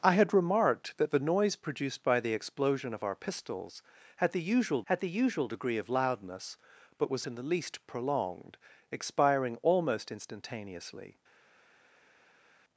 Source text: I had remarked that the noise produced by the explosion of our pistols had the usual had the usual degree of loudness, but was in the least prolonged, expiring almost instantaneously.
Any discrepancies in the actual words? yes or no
no